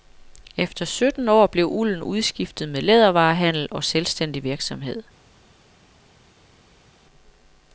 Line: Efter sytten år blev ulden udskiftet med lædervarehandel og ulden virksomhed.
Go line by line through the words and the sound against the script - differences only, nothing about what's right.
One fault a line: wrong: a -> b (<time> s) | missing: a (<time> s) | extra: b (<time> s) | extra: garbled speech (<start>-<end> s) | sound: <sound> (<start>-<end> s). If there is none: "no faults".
wrong: ulden -> selvstændig (3.8 s)